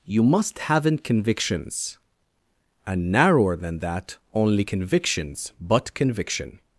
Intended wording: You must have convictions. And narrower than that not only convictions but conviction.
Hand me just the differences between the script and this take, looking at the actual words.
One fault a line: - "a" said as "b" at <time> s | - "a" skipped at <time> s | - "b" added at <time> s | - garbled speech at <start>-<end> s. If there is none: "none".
- "have" said as "haven't" at 0.6 s
- "not" skipped at 4.2 s